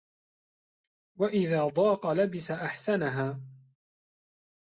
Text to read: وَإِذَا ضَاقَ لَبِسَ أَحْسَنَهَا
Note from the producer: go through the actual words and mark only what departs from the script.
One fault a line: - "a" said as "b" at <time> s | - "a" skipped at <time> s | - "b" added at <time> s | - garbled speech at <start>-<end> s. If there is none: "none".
none